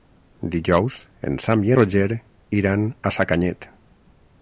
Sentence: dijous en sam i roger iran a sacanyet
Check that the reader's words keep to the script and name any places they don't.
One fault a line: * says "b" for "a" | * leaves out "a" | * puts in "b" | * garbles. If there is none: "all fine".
all fine